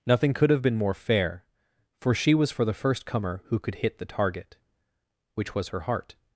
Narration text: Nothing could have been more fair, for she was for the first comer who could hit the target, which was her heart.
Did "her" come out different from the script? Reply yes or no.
no